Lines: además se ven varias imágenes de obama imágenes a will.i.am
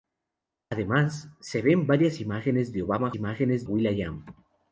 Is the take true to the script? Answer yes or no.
yes